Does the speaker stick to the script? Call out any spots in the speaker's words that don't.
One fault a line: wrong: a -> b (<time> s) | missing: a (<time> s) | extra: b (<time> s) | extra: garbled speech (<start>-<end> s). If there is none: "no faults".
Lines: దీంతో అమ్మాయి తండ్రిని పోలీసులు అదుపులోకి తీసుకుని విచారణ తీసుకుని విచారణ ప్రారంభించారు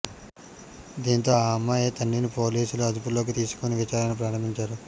extra: ఆ (1.4 s)
missing: తీసుకుని విచారణ (4.1 s)